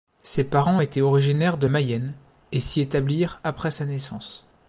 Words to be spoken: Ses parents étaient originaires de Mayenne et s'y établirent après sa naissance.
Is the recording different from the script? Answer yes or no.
no